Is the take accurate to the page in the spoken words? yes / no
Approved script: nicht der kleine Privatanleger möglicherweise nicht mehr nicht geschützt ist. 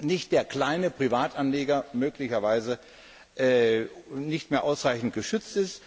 no